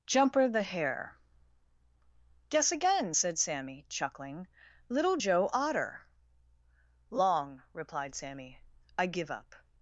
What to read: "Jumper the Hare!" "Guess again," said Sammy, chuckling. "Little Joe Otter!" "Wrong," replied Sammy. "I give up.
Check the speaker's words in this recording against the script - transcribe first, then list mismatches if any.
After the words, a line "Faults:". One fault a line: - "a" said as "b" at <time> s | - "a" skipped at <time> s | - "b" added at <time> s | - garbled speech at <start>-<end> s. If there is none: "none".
"Jumper the Hare!" "Guess again," said Sammy, chuckling. "Little Joe Otter!" "Long," replied Sammy. "I give up.
Faults:
- "Wrong" said as "Long" at 7.1 s